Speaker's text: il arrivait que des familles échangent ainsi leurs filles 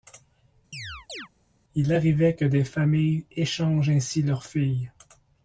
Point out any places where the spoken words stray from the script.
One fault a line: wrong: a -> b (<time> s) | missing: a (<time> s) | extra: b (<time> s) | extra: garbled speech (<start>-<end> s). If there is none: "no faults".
no faults